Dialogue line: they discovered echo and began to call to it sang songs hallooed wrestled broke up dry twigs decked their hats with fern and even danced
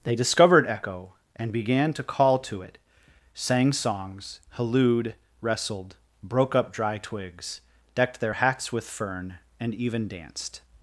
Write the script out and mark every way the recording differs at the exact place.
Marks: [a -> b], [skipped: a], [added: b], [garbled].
they discovered echo and began to call to it sang songs hallooed wrestled broke up dry twigs decked their hats with fern and even danced